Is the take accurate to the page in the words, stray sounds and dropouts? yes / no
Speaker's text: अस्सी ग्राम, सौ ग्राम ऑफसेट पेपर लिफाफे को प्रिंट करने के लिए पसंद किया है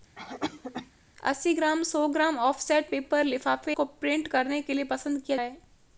no